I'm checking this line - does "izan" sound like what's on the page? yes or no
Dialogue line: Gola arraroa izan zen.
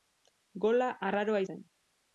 no